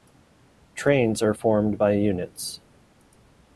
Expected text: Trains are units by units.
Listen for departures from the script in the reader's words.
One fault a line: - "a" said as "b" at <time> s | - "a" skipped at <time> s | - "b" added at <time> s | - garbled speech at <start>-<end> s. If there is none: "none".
- "units" said as "formed" at 1.3 s